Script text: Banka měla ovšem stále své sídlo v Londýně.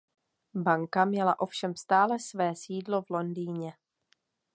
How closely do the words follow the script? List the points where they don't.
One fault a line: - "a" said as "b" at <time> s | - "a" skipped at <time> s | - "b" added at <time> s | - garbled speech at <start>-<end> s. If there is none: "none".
none